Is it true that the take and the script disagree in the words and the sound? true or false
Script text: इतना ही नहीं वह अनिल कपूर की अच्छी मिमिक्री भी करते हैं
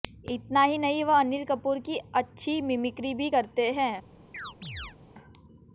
true